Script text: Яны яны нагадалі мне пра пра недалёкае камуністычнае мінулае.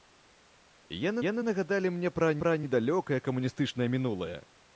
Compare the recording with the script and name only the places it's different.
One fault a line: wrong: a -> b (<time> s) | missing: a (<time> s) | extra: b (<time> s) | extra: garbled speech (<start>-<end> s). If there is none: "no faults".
no faults